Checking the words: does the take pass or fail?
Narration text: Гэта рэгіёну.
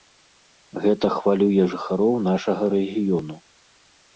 fail